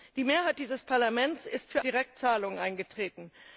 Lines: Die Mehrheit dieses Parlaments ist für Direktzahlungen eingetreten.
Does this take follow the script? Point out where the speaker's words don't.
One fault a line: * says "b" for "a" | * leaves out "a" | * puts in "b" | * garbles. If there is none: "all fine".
all fine